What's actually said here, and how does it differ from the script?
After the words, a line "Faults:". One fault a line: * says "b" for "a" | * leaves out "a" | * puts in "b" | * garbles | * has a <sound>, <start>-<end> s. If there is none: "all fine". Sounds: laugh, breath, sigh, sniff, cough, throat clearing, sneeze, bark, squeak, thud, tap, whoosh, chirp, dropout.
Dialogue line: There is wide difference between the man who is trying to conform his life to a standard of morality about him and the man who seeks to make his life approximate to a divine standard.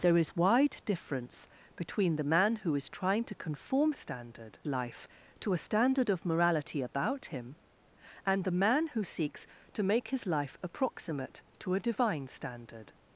There is wide difference between the man who is trying to conform standard life to a standard of morality about him and the man who seeks to make his life approximate to a divine standard.
Faults:
* says "standard" for "his"